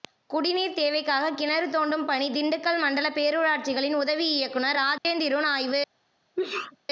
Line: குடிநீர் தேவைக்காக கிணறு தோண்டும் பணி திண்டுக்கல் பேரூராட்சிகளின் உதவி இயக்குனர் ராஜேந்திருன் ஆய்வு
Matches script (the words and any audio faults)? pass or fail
fail